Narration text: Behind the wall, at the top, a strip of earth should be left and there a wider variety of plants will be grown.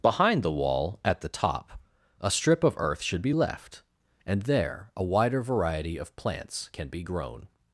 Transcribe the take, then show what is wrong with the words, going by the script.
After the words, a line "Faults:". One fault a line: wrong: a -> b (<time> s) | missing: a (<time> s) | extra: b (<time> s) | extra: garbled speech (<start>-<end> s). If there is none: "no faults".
Behind the wall, at the top, a strip of earth should be left and there a wider variety of plants can be grown.
Faults:
wrong: will -> can (6.7 s)